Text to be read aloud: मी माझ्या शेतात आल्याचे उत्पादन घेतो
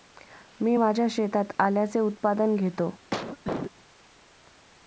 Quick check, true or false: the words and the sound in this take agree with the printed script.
false